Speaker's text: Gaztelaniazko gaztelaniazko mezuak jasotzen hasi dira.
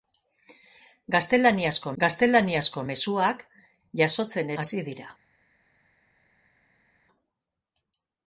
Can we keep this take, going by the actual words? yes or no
yes